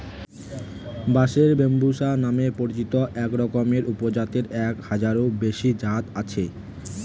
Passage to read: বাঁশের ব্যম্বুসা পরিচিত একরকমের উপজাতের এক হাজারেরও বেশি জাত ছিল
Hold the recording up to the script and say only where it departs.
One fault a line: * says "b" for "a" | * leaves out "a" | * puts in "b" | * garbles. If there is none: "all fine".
* puts in "নামে"
* says "আছে" for "ছিল"